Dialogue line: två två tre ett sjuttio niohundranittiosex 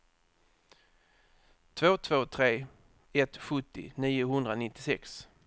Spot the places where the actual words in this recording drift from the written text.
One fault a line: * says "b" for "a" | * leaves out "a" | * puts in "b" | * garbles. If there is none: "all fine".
all fine